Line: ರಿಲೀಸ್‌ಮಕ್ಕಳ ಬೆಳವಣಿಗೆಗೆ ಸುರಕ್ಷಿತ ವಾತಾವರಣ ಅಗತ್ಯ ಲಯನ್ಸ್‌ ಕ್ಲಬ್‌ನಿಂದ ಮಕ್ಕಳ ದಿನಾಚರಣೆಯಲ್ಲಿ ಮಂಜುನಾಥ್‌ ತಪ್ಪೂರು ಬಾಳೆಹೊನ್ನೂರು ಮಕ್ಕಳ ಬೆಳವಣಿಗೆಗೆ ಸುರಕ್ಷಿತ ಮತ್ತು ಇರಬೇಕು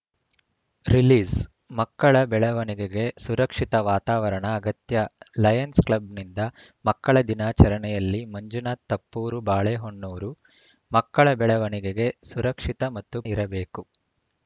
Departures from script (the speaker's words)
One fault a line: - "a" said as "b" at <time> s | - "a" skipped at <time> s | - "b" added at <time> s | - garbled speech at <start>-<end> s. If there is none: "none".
none